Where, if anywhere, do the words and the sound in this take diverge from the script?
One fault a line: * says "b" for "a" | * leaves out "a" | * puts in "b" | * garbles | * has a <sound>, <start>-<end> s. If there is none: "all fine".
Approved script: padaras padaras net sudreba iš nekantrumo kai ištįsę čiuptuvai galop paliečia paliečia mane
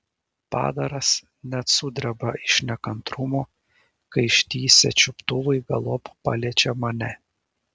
* leaves out "padaras"
* leaves out "paliečia"